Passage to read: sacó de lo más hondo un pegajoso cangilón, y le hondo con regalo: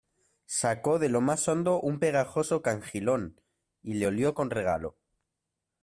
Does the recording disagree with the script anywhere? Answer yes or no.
yes